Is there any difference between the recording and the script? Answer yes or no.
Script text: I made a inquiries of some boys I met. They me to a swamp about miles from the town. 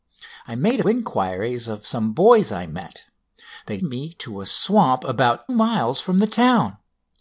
no